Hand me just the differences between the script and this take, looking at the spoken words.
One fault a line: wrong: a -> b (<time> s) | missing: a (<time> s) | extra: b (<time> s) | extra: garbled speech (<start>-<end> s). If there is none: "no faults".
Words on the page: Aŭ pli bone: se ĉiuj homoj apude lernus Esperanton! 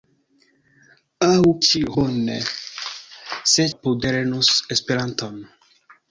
wrong: pli -> ĉiuj (1.7 s)
missing: ĉiuj homoj (3.6 s)